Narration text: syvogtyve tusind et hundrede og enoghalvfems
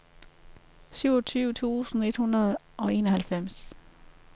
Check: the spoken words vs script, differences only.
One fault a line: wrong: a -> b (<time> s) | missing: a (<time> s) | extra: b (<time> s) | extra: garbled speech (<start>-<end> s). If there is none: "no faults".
no faults